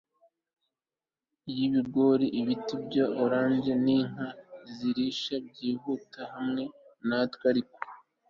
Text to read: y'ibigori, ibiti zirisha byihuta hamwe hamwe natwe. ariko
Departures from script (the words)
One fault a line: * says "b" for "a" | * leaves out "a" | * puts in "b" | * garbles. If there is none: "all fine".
* puts in "bya orange n'inka"
* leaves out "hamwe"